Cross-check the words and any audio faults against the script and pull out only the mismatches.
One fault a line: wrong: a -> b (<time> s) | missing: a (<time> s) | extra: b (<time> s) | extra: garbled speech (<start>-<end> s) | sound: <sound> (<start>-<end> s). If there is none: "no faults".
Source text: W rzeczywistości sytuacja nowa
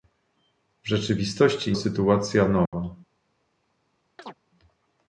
sound: dropout (2.7-2.7 s)
sound: chirp (4.2-4.4 s)